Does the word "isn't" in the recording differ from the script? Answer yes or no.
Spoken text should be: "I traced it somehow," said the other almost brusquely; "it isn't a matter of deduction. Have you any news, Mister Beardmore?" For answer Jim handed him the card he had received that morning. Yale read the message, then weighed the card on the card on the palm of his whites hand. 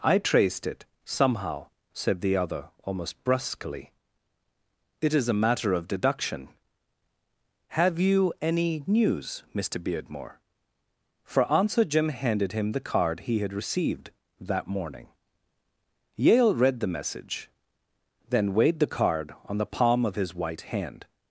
yes